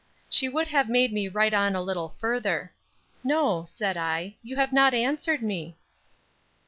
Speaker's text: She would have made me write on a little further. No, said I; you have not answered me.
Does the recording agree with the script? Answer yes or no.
yes